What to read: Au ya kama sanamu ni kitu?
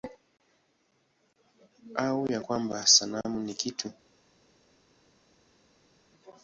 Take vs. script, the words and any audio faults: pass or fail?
fail